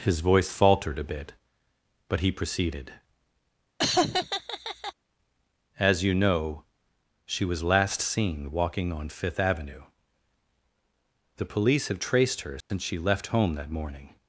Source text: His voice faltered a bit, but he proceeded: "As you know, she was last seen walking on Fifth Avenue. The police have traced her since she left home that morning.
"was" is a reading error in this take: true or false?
false